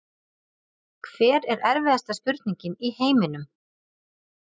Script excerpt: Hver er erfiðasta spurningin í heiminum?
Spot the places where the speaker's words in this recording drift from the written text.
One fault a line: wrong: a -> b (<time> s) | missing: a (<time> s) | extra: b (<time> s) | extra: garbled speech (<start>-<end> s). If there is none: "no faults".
no faults